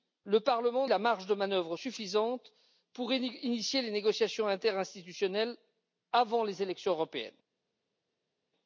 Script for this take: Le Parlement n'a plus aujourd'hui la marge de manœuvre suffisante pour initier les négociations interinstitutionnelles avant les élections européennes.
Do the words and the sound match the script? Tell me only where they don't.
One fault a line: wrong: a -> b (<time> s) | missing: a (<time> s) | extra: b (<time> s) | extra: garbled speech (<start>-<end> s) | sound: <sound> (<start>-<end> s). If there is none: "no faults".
missing: n'a plus aujourd'hui (0.9 s)